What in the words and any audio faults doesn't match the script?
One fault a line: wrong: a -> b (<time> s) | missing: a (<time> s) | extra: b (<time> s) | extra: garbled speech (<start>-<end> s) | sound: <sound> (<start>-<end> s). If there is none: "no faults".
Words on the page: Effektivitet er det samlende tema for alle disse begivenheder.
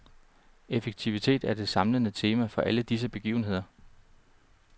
no faults